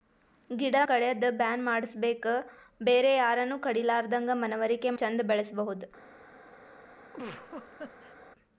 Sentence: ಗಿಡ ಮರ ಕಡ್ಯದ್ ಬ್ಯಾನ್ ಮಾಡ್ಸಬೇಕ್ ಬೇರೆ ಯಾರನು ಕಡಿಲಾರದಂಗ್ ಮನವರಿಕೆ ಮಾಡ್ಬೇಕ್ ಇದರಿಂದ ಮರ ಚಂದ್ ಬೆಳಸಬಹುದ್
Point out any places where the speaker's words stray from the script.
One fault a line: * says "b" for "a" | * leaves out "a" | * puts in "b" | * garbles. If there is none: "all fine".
* leaves out "ಮರ"
* leaves out "ಮಾಡ್ಬೇಕ್ ಇದರಿಂದ ಮರ"